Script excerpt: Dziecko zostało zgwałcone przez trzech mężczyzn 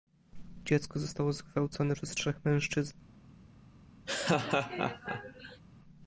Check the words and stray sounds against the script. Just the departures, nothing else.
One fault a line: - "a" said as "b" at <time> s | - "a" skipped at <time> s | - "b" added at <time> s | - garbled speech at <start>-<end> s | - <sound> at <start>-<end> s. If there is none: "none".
- laugh at 4.1-5.6 s